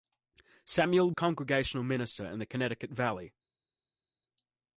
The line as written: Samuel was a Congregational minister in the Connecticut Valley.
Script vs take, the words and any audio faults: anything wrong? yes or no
yes